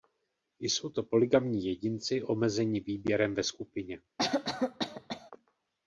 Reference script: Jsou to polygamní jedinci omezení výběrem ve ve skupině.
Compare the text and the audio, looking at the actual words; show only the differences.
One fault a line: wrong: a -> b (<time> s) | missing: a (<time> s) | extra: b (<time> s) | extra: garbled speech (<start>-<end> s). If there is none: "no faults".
missing: ve (3.4 s)